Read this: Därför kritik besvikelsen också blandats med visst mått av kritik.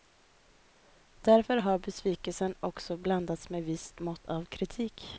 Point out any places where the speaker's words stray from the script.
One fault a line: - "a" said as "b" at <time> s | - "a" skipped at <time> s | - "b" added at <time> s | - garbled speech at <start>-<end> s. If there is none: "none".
- "kritik" said as "har" at 1.6 s